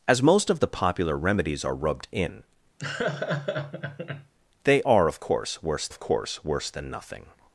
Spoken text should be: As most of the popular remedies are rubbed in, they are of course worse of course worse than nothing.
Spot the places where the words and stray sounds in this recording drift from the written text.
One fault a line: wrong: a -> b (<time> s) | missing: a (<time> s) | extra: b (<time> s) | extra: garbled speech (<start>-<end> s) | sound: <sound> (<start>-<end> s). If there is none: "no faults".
sound: laugh (2.8-4.3 s)